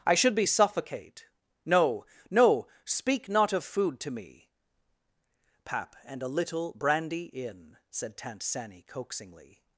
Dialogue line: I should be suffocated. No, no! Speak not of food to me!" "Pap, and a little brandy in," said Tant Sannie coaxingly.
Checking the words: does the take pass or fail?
fail